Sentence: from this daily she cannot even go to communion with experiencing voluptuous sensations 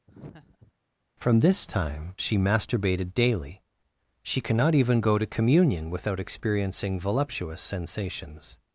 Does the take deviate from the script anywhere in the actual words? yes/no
yes